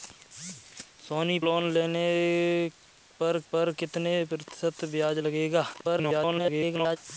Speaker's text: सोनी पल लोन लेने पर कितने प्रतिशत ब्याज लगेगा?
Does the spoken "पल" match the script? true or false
false